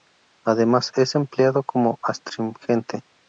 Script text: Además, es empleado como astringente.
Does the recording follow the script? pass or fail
pass